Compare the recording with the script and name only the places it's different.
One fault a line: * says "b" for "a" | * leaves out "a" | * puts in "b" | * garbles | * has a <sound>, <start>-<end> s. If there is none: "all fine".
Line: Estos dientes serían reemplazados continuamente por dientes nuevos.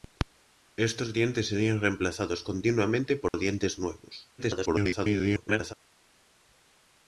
* has a dropout, 3.3-3.3 s
* garbles